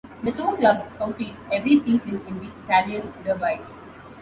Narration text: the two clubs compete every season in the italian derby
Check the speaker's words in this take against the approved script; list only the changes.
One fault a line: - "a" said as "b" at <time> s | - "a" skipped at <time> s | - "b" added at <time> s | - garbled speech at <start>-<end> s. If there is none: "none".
none